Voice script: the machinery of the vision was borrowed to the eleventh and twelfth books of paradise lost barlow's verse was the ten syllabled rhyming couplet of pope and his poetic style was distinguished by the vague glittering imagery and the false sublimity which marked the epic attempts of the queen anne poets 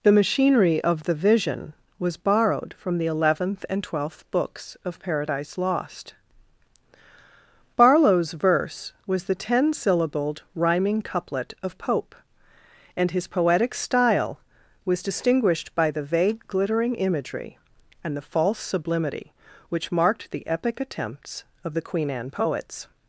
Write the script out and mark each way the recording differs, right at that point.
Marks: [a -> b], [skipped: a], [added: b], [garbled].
the machinery of the vision was borrowed [to -> from] the eleventh and twelfth books of paradise lost barlow's verse was the ten syllabled rhyming couplet of pope and his poetic style was distinguished by the vague glittering imagery and the false sublimity which marked the epic attempts of the queen anne poets